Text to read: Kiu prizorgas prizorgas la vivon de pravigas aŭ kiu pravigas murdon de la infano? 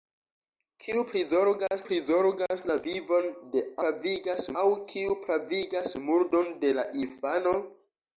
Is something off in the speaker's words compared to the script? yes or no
no